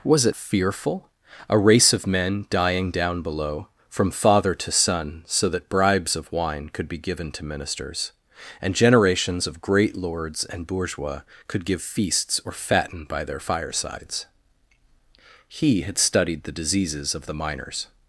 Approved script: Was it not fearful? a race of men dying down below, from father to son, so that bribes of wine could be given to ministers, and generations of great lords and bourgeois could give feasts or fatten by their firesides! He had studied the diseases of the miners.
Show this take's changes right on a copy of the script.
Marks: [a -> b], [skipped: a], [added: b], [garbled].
Was it [skipped: not] fearful? a race of men dying down below, from father to son, so that bribes of wine could be given to ministers, and generations of great lords and bourgeois could give feasts or fatten by their firesides! He had studied the diseases of the miners.